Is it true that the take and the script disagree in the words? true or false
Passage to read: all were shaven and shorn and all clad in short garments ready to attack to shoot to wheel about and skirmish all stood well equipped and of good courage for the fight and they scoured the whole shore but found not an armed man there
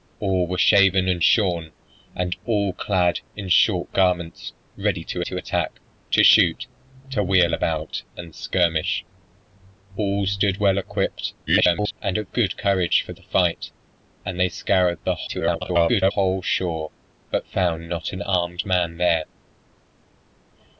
true